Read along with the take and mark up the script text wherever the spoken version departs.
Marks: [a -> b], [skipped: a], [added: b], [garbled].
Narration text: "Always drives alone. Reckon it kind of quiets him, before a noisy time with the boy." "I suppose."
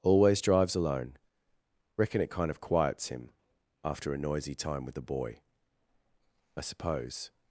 "Always drives alone. Reckon it kind of quiets him, [before -> after] a noisy time with the boy." "I suppose."